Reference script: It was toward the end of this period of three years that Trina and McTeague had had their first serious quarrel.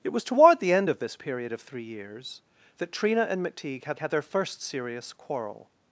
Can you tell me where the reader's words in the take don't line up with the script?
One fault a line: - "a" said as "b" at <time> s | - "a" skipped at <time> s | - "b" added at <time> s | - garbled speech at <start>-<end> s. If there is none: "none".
none